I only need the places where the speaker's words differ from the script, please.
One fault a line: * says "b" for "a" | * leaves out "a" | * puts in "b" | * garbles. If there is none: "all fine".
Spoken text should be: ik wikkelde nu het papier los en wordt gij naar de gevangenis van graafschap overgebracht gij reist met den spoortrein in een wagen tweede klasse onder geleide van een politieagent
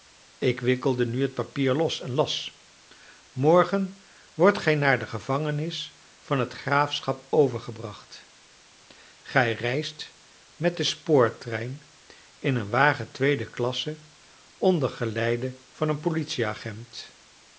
* puts in "las morgen"
* puts in "het"